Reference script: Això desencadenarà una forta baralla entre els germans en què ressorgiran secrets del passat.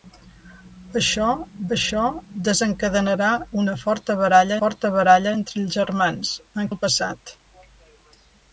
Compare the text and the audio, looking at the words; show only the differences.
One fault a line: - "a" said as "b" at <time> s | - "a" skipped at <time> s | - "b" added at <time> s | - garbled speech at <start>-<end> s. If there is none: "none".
- "això" added at 1.8 s
- "forta baralla" added at 4.6 s
- "què ressorgiran secrets" skipped at 6.7 s